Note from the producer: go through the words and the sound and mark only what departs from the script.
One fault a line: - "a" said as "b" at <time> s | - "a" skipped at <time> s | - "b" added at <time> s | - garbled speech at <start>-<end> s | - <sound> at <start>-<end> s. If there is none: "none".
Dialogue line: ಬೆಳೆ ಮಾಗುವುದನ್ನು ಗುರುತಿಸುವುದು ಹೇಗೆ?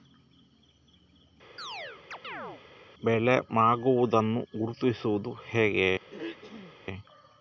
- chirp at 1.6-2.6 s
- throat clearing at 6.1-6.8 s